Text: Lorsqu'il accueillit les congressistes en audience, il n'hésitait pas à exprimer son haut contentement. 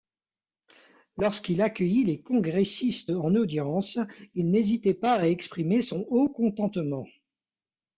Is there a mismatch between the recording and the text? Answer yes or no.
no